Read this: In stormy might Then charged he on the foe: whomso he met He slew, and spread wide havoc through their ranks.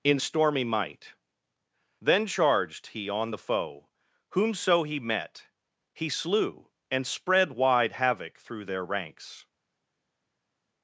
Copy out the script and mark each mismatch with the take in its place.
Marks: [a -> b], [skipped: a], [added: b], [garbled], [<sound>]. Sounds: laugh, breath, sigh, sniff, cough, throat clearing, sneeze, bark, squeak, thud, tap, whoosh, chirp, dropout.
In stormy might Then charged he on the foe: whomso he met He slew, and spread wide havoc through their ranks.